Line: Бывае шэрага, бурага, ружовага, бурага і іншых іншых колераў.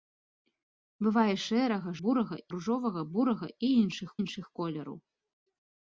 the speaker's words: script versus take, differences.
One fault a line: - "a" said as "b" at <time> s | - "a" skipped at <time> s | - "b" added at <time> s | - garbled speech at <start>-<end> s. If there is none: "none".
none